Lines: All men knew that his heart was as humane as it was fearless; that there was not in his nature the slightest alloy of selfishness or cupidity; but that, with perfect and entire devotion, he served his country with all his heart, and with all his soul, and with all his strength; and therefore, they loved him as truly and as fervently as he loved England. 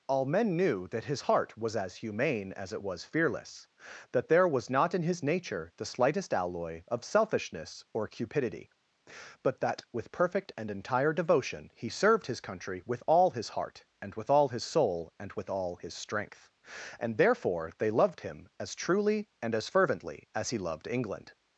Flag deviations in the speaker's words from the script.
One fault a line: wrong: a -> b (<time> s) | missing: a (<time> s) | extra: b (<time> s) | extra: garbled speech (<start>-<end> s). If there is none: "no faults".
no faults